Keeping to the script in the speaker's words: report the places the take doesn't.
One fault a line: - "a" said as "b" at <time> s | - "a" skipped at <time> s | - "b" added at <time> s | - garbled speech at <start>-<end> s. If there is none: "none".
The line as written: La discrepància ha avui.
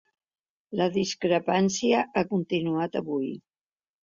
- "continuat" added at 2.3 s